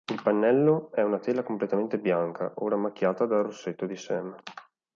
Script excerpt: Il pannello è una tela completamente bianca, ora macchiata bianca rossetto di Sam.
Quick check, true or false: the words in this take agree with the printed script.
false